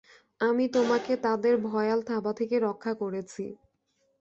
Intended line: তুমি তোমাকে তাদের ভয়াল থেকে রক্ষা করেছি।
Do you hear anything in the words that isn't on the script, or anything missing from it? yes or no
yes